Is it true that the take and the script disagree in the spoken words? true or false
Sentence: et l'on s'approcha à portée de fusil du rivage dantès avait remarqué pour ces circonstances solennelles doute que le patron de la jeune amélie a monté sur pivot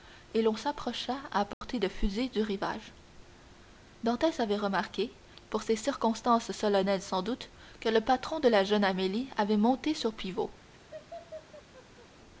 true